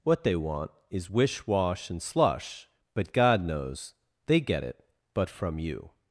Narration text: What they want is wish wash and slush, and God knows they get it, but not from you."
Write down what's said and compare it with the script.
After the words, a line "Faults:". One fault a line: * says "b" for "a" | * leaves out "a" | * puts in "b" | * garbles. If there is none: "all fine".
What they want is wish wash and slush, but God knows they get it, but from you."
Faults:
* says "but" for "and"
* leaves out "not"